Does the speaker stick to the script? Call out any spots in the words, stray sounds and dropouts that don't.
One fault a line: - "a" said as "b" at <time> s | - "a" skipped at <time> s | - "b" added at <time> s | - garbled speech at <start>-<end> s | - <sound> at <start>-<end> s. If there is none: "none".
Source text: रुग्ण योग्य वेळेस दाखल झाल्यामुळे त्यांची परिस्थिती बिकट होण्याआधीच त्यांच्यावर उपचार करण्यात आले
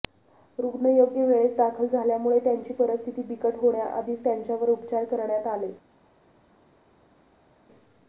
none